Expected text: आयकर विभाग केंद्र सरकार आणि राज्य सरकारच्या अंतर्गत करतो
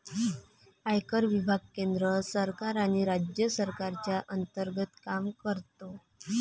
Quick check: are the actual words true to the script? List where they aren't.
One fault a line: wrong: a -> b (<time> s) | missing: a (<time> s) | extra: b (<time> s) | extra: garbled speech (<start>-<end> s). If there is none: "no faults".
extra: काम (5.0 s)